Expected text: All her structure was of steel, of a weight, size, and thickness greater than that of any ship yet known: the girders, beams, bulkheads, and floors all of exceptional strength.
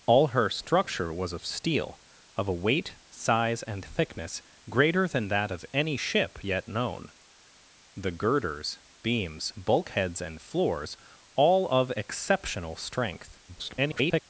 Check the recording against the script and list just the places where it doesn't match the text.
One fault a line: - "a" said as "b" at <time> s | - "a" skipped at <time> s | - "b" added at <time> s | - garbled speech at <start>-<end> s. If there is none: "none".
- garbled speech at 13.5-14.2 s